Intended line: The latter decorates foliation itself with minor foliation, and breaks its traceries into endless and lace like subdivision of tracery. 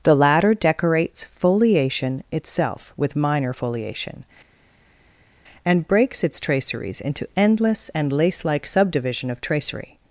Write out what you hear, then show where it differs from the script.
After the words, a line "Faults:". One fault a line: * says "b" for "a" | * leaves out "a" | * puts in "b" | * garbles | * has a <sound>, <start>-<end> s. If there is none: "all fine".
The latter decorates foliation itself with minor foliation, and breaks its traceries into endless and lace like subdivision of tracery.
Faults:
all fine